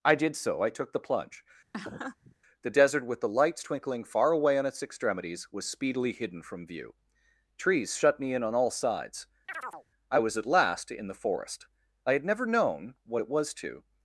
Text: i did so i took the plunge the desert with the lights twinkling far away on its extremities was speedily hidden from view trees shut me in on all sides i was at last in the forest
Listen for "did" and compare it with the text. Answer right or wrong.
right